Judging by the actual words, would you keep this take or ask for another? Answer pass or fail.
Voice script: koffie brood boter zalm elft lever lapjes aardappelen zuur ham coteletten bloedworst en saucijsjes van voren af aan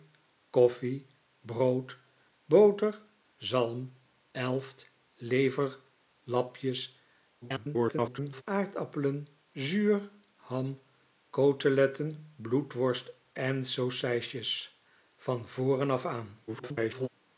fail